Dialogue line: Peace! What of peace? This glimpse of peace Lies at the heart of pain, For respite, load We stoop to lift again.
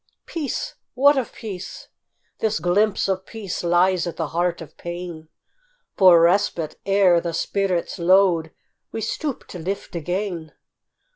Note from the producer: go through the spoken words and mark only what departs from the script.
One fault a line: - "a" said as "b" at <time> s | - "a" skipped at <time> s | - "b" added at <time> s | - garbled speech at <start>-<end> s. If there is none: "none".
- "ere the spirit's" added at 6.9 s